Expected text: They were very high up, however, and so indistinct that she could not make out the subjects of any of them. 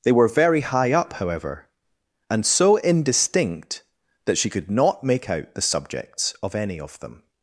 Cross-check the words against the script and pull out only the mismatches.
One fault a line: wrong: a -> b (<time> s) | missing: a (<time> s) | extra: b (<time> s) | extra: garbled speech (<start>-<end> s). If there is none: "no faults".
no faults